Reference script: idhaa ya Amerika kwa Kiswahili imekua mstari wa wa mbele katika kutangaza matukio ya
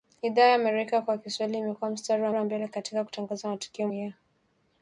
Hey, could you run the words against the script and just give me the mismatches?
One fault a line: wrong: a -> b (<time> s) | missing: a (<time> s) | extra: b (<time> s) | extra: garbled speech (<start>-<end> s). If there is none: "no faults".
no faults